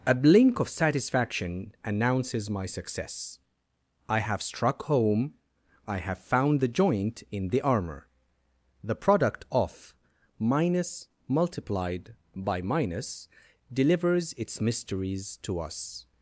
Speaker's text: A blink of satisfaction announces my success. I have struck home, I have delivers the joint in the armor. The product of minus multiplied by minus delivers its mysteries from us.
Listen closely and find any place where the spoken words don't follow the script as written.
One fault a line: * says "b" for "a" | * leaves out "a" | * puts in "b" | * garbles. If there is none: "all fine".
* says "found" for "delivers"
* says "to" for "from"